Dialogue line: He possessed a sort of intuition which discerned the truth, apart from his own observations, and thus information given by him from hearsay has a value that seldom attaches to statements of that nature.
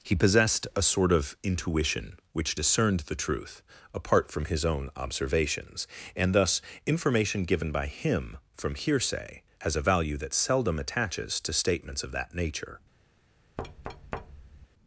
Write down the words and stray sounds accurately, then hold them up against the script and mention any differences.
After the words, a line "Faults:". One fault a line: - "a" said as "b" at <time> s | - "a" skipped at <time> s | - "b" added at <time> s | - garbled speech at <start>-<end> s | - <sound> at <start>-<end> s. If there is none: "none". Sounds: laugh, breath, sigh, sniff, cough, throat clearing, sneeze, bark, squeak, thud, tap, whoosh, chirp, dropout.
He possessed a sort of intuition which discerned the truth, apart from his own observations, and thus information given by him from hearsay has a value that seldom attaches to statements of that nature.
Faults:
- thud at 13.6-14.7 s